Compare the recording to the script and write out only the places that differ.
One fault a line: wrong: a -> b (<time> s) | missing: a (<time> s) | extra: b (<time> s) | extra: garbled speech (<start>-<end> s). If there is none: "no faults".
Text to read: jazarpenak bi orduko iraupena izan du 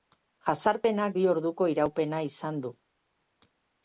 no faults